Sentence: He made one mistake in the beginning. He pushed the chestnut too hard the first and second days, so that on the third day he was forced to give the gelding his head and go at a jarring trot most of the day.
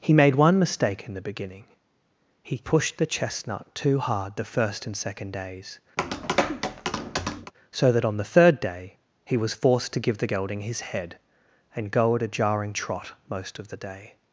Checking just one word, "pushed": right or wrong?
right